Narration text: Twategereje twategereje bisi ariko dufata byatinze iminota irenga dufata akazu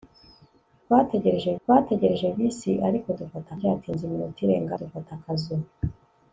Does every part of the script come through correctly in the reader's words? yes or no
yes